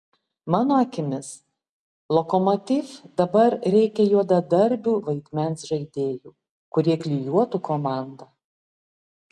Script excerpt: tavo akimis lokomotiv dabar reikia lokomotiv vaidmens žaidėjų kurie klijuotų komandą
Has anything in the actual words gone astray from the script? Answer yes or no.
yes